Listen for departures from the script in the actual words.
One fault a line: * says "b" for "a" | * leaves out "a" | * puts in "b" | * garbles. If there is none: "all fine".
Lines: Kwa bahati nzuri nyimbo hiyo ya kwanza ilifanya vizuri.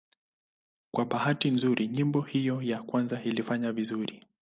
all fine